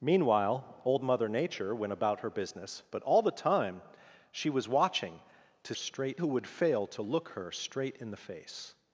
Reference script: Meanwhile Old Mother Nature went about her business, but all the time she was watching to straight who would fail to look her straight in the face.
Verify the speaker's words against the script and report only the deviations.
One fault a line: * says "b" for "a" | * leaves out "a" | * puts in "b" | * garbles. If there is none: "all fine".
all fine